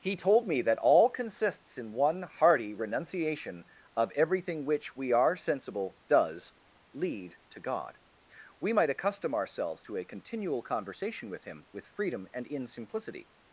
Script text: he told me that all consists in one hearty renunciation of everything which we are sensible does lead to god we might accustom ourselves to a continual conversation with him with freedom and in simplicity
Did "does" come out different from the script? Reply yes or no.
no